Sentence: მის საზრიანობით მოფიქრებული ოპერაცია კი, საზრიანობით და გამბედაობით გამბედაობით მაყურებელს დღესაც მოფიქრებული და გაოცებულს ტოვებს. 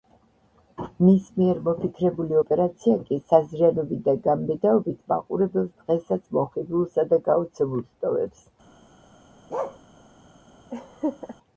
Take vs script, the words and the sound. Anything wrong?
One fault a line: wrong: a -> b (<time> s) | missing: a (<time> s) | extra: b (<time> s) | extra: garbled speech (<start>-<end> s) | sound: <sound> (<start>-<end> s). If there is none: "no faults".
wrong: საზრიანობით -> მიერ (1.4 s)
missing: გამბედაობით (5.0 s)
wrong: მოფიქრებული -> მოხიბლულსა (6.4 s)
sound: bark (9.5-9.8 s)
sound: laugh (10.7-11.4 s)